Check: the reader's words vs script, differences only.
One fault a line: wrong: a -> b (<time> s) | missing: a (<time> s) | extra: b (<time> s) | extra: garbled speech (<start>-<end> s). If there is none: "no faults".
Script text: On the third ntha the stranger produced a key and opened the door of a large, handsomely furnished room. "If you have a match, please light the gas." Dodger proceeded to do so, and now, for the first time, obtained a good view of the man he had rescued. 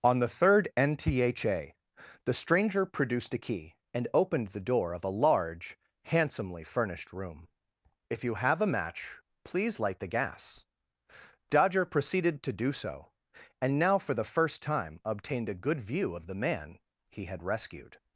no faults